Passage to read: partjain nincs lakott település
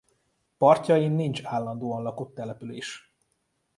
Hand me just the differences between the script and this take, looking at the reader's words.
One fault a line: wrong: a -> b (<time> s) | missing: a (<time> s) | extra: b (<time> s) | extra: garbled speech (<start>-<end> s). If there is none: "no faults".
extra: állandóan (1.4 s)